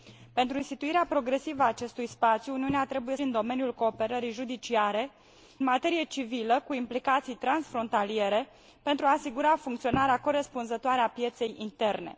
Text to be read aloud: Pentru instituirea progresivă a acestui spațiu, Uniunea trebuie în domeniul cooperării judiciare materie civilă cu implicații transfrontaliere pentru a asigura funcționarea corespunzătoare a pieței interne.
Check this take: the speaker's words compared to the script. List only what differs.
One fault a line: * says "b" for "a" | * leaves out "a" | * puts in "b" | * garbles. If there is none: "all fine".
all fine